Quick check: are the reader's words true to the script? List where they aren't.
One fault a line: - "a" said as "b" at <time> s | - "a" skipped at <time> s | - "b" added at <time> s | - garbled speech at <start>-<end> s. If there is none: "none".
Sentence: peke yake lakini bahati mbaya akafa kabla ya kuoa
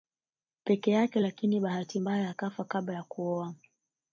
none